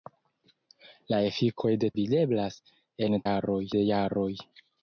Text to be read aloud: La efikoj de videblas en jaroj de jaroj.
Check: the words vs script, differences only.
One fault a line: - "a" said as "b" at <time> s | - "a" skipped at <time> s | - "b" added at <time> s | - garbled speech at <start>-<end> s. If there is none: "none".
none